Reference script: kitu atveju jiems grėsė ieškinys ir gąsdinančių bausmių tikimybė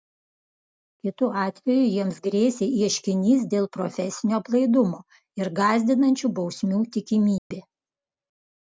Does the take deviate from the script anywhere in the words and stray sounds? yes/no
yes